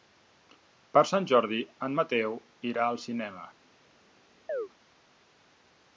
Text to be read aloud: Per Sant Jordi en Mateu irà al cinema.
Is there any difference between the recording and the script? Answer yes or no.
no